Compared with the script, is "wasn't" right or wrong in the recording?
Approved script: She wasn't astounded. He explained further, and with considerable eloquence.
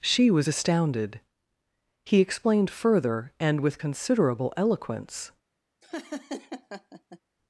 wrong